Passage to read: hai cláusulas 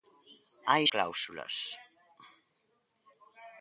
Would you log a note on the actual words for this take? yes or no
no